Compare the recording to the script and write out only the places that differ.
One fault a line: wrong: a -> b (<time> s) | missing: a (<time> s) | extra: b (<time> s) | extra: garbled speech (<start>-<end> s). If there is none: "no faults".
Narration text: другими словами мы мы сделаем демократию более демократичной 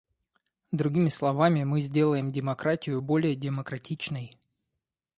missing: мы (1.8 s)